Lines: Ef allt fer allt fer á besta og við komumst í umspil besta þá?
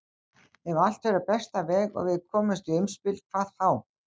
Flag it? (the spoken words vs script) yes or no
yes